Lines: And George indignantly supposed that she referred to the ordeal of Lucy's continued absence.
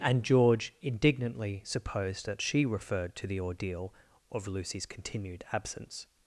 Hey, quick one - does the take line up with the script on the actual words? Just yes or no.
yes